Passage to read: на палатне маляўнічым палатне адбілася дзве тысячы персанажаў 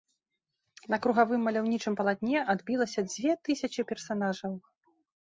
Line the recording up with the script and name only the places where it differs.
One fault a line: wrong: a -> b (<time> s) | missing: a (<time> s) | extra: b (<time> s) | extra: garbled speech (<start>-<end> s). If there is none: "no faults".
wrong: палатне -> кругавым (1.0 s)